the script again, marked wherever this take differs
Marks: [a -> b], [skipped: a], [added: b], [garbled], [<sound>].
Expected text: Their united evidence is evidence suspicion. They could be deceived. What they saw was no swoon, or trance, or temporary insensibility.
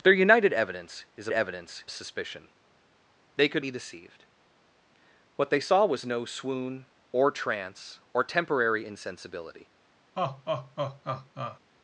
Their united evidence is evidence suspicion. They could be deceived. What they saw was no swoon, or trance, or temporary insensibility. [laugh]